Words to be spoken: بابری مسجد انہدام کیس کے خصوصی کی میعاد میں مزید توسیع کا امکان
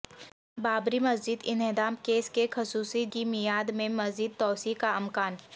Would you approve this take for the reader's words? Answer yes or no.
yes